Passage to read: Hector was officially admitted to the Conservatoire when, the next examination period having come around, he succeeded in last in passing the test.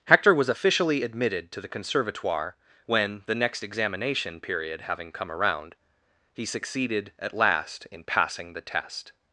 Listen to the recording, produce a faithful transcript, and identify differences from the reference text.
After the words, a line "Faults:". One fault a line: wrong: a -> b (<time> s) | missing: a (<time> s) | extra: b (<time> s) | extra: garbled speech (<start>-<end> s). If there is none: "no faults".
Hector was officially admitted to the Conservatoire when, the next examination period having come around, he succeeded at last in passing the test.
Faults:
wrong: in -> at (7.2 s)